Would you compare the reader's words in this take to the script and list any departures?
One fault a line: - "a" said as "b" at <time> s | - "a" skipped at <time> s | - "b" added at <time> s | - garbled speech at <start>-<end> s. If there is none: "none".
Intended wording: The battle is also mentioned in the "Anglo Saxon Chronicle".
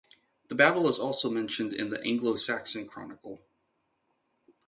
none